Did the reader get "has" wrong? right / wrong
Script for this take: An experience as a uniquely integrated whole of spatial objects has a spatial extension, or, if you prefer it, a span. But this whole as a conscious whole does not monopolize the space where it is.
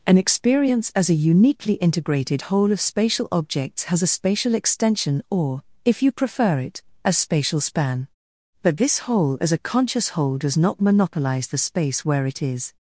right